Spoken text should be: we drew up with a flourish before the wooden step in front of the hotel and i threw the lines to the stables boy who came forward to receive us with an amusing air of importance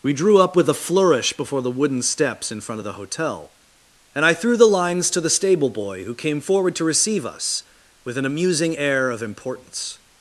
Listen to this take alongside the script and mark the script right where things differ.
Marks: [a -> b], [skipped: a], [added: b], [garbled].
we drew up with a flourish before the wooden [step -> steps] in front of the hotel and i threw the lines to the [stables -> stable] boy who came forward to receive us with an amusing air of importance